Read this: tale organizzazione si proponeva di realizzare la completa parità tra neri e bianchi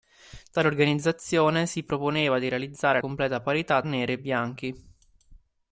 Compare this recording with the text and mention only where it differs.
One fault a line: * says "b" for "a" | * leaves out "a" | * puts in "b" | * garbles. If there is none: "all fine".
* leaves out "la"
* leaves out "tra"